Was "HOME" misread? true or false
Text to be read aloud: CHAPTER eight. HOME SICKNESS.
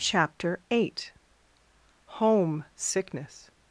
false